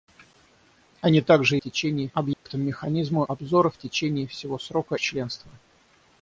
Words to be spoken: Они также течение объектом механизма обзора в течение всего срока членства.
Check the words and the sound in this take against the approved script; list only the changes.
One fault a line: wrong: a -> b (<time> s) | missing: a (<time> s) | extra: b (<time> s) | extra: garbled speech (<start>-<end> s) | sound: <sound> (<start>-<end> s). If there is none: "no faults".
sound: dropout (2.3-2.5 s)